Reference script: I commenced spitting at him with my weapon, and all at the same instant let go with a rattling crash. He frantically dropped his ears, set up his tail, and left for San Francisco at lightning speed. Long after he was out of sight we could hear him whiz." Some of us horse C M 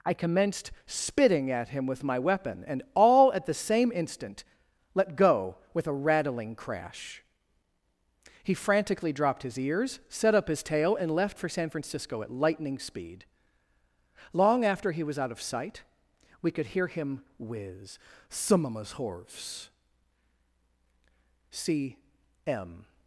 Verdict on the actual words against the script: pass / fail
pass